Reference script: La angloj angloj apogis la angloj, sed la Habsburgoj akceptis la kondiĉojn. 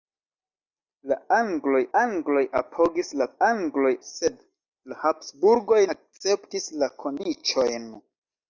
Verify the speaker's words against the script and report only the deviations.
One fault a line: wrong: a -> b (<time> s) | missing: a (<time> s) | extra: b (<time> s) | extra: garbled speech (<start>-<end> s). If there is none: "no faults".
no faults